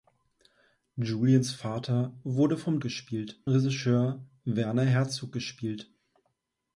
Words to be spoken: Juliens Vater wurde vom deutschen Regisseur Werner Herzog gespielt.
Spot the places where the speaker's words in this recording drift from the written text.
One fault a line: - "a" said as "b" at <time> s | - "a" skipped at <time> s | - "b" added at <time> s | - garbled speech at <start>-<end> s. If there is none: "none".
- "deutschen" said as "gespielt" at 2.8 s